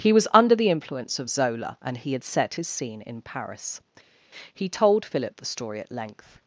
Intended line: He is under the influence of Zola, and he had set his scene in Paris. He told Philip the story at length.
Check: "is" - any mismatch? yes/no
yes